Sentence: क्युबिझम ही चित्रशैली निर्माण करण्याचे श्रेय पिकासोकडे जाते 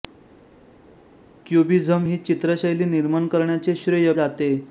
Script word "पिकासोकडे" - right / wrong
wrong